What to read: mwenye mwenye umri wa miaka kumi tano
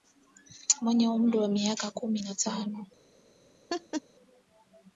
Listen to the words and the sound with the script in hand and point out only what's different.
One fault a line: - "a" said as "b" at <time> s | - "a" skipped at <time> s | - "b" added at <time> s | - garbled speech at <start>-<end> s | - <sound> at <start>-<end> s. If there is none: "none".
- "mwenye" skipped at 1.1 s
- "na" added at 2.2 s
- laugh at 3.7-4.0 s